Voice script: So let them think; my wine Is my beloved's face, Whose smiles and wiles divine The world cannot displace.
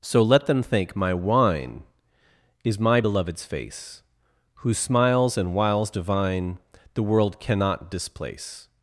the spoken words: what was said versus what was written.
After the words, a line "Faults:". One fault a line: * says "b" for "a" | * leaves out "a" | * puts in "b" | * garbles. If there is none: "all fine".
So let them think; my wine Is my beloved's face, Whose smiles and wiles divine The world cannot displace.
Faults:
all fine